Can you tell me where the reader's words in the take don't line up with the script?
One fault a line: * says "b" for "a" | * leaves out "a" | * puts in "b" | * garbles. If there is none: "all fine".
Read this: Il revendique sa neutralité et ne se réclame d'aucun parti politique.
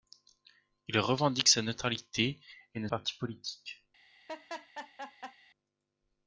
* leaves out "se réclame d'aucun"